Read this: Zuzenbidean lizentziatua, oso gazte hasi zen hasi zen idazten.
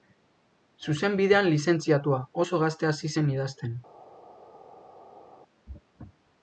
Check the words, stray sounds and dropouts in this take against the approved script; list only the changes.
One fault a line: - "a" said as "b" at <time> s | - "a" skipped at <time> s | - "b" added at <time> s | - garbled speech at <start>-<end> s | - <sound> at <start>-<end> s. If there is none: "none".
- "hasi zen" skipped at 3.3 s